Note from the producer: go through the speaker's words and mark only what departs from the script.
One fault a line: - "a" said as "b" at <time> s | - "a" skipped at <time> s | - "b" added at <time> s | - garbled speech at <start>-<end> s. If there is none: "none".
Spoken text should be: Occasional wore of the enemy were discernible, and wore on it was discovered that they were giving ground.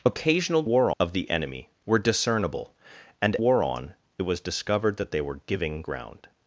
none